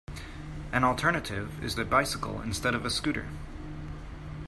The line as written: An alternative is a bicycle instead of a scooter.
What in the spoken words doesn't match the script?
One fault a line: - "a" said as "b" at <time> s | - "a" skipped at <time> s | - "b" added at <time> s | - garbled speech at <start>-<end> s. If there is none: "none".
none